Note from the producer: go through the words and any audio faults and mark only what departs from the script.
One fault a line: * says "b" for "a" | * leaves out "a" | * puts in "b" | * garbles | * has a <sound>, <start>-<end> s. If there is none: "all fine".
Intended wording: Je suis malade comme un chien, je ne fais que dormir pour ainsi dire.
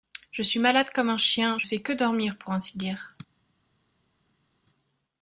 * leaves out "ne"